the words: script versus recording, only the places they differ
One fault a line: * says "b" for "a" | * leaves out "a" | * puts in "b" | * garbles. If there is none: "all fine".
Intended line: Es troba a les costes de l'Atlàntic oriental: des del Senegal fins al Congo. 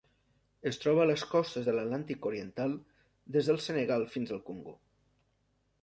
all fine